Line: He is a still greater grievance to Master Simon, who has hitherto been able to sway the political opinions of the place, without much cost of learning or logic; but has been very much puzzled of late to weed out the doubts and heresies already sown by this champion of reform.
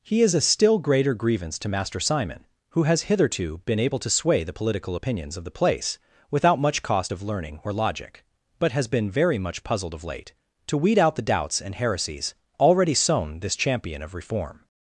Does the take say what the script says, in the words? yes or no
no